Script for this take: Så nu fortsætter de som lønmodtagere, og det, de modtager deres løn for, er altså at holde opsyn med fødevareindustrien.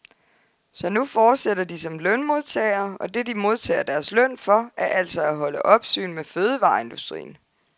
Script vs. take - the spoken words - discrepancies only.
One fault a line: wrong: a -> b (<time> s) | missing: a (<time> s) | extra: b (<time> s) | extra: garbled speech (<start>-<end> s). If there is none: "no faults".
no faults